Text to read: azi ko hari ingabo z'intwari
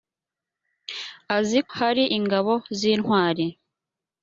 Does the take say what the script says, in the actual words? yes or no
no